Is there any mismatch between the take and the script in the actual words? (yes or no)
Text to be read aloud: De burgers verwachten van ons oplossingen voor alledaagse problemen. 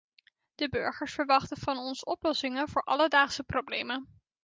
no